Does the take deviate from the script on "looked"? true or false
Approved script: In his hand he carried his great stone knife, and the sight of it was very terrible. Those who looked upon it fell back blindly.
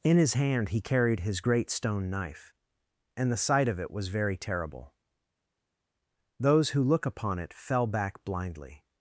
true